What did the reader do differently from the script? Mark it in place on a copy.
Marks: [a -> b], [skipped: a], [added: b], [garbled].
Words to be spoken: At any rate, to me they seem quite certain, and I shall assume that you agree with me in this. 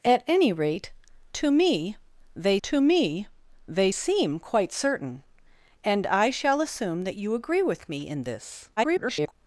At any rate, to me they [added: to me they] seem quite certain, and I shall assume that you agree with me in this. [garbled]